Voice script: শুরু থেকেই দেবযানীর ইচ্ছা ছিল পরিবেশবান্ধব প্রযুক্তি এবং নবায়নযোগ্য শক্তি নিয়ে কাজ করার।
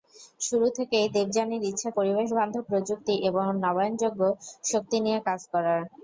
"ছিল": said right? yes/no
no